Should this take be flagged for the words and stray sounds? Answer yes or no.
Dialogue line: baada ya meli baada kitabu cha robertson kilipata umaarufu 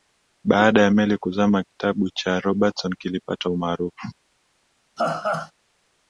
yes